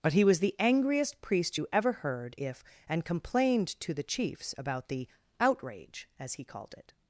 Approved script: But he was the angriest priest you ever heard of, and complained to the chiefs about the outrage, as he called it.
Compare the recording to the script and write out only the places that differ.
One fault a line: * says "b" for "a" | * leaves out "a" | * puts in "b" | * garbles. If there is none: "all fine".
* says "if" for "of"